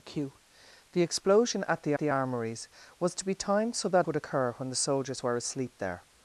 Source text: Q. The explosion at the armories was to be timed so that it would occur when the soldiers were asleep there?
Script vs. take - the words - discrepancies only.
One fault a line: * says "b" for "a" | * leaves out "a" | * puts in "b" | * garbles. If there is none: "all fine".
* puts in "the"
* leaves out "it"